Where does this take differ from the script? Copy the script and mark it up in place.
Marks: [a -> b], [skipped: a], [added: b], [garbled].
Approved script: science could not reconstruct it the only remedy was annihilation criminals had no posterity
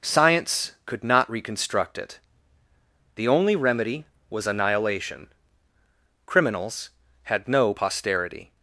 science could not reconstruct it the only remedy was annihilation criminals had no posterity